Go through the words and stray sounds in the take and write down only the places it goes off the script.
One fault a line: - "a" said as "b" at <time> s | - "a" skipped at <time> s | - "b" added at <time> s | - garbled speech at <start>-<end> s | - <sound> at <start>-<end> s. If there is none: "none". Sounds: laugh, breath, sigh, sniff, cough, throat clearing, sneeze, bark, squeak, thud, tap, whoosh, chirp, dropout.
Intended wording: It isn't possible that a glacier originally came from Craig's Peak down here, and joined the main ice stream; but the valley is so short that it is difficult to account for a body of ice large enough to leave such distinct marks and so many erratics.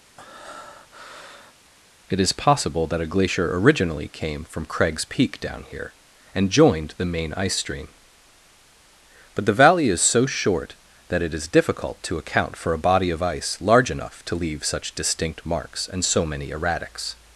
- breath at 0.2-1.5 s
- "isn't" said as "is" at 2.2 s